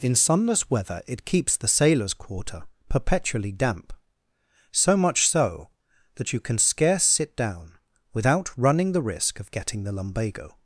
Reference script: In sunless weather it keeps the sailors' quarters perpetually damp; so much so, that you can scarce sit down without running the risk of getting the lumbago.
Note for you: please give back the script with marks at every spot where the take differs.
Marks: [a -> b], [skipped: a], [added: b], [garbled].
In sunless weather it keeps the sailors' [quarters -> quarter] perpetually damp; so much so, that you can scarce sit down without running the risk of getting the lumbago.